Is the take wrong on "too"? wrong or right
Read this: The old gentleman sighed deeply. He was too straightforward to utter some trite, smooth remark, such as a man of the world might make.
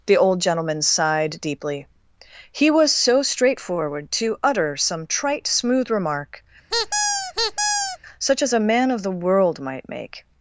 wrong